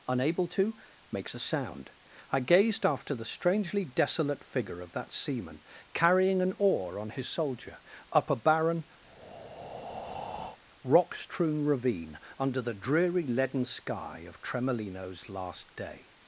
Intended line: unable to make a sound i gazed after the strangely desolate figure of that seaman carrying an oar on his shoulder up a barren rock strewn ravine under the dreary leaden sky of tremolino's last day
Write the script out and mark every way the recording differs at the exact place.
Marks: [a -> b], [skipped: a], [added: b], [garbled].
unable to [make -> makes] a sound i gazed after the strangely desolate figure of that seaman carrying an oar on his [shoulder -> soldier] up a barren rock strewn ravine under the dreary leaden sky of tremolino's last day